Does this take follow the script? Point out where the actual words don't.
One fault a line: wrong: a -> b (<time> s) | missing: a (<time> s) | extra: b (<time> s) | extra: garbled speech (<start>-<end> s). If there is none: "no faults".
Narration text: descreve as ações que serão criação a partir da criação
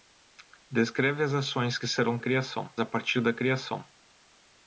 no faults